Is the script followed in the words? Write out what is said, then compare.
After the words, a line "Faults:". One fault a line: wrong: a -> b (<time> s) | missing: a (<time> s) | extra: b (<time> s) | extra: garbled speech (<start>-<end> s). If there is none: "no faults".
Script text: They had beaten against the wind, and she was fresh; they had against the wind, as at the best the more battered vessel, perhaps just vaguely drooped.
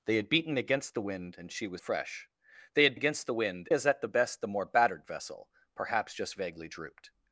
They had beaten against the wind, and she was fresh; they had against the wind, as at the best the more battered vessel, perhaps just vaguely drooped.
Faults:
no faults